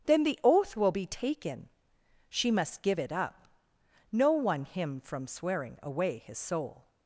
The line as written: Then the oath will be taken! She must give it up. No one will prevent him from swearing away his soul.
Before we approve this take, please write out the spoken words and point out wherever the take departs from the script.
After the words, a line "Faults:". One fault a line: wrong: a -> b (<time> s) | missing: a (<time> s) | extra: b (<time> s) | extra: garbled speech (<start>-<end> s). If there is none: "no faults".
Then the oath will be taken! She must give it up. No one him from swearing away his soul.
Faults:
missing: will prevent (4.6 s)